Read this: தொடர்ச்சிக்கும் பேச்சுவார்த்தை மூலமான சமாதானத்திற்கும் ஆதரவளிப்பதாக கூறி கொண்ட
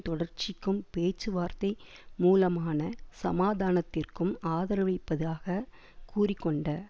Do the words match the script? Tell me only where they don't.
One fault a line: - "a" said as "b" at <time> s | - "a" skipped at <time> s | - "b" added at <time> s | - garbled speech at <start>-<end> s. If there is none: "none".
none